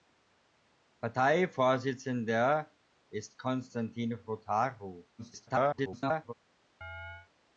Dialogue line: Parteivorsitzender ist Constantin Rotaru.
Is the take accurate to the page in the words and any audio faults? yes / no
no